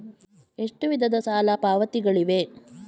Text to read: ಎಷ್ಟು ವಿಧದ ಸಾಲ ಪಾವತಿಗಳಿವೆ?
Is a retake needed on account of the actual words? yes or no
no